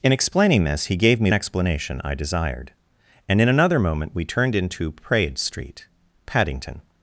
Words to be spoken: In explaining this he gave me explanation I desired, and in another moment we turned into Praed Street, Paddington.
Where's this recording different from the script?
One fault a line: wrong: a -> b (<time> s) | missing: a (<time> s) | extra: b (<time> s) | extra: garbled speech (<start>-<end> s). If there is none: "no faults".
no faults